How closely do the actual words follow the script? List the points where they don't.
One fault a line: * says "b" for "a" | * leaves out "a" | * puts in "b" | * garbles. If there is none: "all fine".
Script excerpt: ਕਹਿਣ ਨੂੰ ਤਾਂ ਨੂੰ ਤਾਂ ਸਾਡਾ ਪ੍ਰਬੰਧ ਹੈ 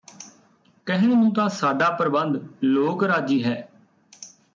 * says "ਸਾਡਾ ਪ੍ਰਬੰਧ ਲੋਕ ਰਾਜੀ" for "ਨੂੰ ਤਾਂ ਸਾਡਾ ਪ੍ਰਬੰਧ"